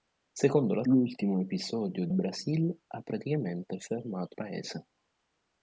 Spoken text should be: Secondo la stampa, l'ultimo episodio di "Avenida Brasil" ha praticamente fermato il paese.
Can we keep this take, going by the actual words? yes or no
no